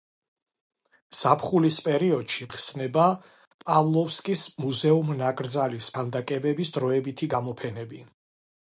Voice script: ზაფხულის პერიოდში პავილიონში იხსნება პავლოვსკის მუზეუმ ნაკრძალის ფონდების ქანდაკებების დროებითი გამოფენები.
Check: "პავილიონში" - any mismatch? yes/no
yes